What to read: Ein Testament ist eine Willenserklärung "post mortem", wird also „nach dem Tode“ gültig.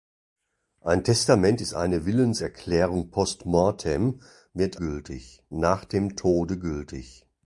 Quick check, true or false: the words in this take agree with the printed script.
false